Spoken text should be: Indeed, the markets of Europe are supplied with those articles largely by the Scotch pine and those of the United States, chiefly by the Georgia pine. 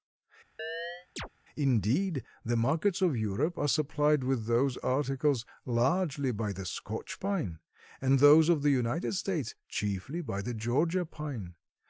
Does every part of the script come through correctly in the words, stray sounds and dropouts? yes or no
no